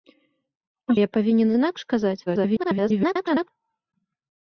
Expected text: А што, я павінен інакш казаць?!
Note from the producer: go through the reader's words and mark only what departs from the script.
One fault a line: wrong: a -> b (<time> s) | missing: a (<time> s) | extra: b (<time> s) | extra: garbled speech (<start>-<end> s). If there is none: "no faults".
missing: што (0.9 s)
extra: garbled speech (2.3-3.5 s)